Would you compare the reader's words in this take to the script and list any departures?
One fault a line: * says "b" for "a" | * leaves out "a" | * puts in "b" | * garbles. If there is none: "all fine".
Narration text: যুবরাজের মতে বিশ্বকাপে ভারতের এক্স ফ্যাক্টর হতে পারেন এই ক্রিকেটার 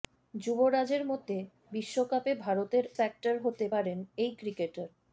* leaves out "এক্স"